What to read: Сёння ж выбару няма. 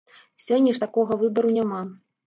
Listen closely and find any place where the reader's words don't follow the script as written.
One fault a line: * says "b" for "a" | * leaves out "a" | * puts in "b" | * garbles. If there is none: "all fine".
* puts in "такога"